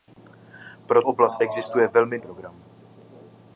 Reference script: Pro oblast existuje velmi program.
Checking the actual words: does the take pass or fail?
pass